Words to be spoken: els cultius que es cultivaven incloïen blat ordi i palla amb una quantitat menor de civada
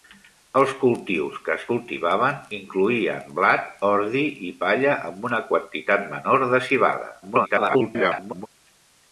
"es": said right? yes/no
yes